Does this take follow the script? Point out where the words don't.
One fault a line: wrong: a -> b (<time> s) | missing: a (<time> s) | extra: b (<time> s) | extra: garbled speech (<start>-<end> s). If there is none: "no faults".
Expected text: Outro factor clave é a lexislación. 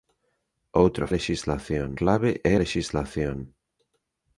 wrong: factor -> lexislación (1.1 s)
missing: a (2.5 s)